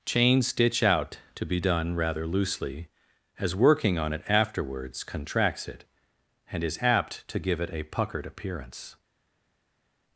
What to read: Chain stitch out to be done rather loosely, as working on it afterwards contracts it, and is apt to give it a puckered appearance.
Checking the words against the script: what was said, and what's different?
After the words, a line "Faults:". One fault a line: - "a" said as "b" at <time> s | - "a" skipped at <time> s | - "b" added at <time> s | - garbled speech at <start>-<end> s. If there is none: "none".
Chain stitch out to be done rather loosely, as working on it afterwards contracts it, and is apt to give it a puckered appearance.
Faults:
none